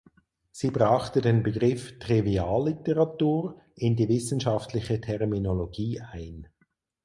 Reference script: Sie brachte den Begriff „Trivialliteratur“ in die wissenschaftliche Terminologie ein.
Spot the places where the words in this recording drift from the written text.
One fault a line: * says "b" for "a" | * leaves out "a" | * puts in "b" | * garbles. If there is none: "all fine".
all fine